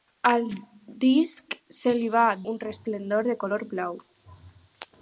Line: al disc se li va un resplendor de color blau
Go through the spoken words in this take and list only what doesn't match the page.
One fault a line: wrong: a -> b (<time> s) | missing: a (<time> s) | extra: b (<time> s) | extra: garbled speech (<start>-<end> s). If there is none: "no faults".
no faults